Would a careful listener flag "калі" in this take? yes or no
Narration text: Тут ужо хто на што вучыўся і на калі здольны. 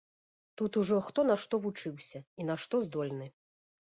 yes